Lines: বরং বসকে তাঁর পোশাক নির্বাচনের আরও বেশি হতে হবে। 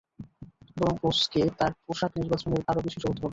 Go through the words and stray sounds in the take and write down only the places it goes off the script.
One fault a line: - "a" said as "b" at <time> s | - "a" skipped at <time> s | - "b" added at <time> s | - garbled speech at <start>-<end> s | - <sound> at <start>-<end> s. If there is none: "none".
none